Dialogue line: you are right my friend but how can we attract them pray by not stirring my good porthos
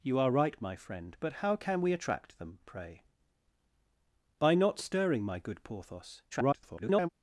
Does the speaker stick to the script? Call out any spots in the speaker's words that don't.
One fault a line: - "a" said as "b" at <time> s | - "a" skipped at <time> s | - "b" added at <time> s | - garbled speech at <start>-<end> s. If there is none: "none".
- garbled speech at 6.3-7.1 s